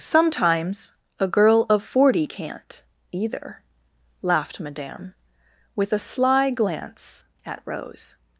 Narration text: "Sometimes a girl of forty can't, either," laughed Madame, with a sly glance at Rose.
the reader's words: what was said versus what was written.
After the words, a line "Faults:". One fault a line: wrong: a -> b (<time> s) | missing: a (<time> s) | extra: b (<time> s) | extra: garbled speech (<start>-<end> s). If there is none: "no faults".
"Sometimes a girl of forty can't, either," laughed Madame, with a sly glance at Rose.
Faults:
no faults